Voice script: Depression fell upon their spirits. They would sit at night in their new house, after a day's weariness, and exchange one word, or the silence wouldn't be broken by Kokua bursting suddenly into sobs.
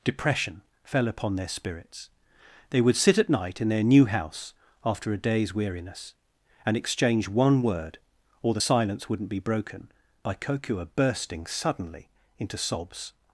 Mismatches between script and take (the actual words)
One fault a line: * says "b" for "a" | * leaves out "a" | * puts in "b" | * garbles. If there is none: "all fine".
all fine